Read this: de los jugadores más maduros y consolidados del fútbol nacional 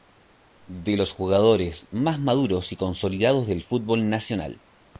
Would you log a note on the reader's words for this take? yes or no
no